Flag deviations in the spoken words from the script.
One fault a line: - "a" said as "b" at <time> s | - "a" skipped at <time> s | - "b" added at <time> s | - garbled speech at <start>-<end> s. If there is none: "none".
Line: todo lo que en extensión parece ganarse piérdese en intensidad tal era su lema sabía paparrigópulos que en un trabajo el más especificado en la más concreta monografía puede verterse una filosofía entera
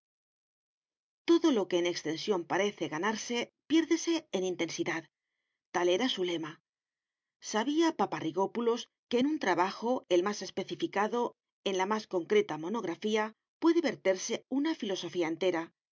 none